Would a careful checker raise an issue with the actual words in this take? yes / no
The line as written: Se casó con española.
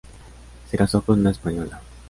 yes